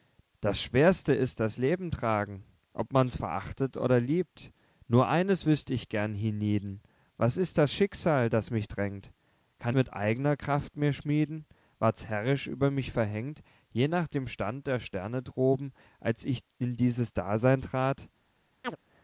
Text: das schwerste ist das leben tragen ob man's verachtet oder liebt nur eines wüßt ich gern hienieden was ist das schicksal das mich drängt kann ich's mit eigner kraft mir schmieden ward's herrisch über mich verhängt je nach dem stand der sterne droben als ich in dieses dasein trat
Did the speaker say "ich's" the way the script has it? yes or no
no